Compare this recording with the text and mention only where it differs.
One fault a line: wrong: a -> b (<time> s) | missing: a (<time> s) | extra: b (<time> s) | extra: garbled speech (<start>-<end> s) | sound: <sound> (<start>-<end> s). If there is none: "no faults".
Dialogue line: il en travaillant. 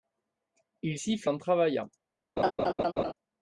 extra: siffle (0.9 s)
sound: laugh (2.4-3.1 s)